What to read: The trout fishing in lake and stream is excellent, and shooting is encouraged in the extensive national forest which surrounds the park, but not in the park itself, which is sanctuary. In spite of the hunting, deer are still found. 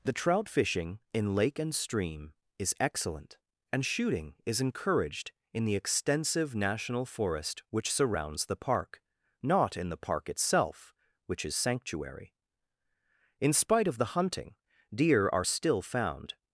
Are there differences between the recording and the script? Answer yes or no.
yes